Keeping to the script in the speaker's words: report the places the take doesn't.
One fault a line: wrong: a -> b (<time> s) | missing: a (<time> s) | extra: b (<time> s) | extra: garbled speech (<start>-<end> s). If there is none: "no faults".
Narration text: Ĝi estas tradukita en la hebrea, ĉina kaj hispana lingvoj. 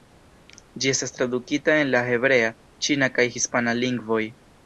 no faults